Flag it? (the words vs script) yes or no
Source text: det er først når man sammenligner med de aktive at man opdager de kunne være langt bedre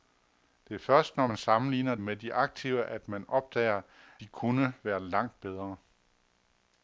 no